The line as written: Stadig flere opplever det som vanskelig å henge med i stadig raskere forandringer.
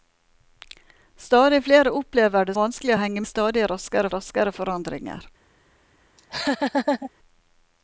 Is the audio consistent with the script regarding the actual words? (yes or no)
no